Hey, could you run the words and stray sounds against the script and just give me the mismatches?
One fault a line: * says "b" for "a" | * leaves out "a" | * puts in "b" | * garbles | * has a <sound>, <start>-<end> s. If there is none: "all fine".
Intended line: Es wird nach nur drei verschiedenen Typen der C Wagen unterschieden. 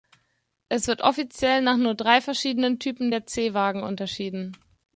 * puts in "offiziell"